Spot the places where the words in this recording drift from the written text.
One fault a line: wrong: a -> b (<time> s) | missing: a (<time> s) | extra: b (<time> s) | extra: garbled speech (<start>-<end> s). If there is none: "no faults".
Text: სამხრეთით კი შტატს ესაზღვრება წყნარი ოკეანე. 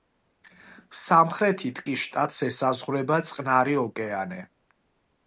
no faults